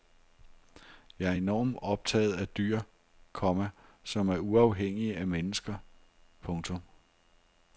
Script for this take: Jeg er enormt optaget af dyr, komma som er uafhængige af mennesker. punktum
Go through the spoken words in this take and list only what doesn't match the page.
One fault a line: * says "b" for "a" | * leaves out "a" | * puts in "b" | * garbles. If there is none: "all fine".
all fine